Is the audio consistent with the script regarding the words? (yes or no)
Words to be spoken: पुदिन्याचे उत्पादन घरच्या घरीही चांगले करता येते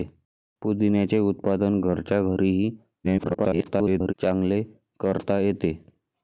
no